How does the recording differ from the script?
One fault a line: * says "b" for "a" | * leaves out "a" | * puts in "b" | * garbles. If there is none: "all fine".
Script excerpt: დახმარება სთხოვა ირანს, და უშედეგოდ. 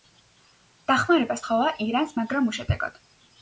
* says "მაგრამ" for "და"